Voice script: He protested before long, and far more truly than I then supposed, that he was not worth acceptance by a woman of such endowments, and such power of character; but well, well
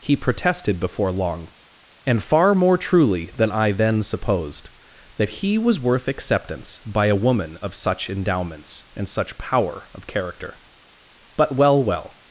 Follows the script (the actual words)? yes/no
no